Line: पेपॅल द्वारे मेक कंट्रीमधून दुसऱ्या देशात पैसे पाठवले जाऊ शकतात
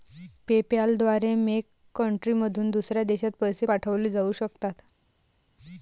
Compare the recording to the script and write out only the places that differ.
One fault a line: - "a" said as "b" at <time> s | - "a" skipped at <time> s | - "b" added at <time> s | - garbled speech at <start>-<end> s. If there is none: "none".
none